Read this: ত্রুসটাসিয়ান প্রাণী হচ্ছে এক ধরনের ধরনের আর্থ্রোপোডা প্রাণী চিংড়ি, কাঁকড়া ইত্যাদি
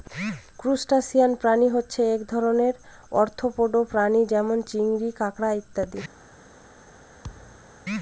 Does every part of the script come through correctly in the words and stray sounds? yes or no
no